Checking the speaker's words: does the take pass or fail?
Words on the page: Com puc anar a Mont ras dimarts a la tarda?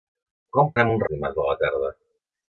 fail